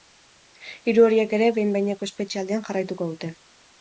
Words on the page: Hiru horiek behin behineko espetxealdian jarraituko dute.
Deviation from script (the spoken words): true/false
true